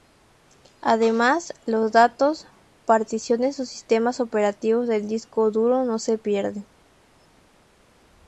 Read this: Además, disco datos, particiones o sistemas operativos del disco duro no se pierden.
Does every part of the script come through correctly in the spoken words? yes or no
no